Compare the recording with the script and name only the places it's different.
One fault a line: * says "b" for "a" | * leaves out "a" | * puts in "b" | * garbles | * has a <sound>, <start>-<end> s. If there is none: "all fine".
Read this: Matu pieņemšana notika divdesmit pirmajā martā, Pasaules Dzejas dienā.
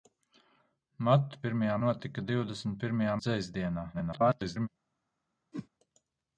* says "pirmajā" for "pieņemšana"
* leaves out "martā Pasaules"
* garbles
* has a whoosh, 5.5-5.7 s